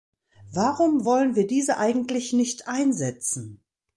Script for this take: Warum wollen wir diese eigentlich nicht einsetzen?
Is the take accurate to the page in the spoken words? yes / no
yes